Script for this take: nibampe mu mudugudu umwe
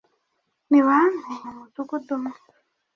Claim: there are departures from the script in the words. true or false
false